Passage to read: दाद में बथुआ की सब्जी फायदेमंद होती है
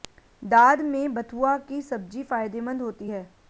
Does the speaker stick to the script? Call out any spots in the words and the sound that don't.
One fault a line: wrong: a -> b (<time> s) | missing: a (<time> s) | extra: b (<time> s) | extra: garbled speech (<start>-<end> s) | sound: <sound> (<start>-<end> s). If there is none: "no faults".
no faults